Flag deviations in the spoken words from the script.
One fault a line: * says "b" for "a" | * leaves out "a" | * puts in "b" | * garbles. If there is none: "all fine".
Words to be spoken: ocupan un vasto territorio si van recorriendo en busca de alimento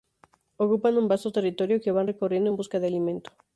* says "que" for "si"